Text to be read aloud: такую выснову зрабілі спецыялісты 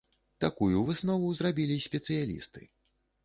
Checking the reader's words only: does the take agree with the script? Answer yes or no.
yes